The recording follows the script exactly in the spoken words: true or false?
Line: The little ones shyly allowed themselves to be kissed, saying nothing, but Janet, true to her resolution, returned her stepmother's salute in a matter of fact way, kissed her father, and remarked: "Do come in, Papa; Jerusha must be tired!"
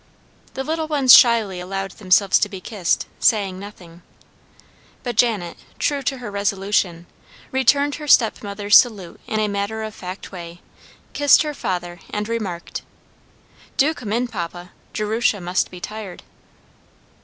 true